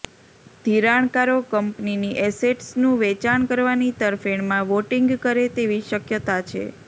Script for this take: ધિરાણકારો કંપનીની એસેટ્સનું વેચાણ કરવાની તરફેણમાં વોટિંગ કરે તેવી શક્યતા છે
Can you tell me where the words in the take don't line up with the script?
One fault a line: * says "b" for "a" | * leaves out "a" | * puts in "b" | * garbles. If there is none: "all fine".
all fine